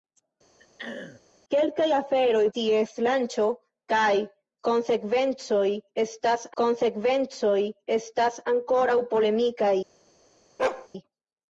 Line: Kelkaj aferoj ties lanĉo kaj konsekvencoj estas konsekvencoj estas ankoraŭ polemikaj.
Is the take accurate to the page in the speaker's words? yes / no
yes